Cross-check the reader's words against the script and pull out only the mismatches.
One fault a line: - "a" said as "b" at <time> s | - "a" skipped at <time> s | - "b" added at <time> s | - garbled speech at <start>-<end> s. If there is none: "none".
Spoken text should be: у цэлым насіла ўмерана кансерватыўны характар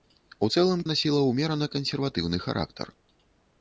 none